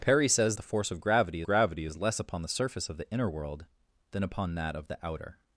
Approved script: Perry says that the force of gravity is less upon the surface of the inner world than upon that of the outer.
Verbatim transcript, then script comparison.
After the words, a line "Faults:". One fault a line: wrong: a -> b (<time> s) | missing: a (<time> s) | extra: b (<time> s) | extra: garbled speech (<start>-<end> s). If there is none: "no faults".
Perry says the force of gravity gravity is less upon the surface of the inner world than upon that of the outer.
Faults:
missing: that (0.6 s)
extra: gravity (1.4 s)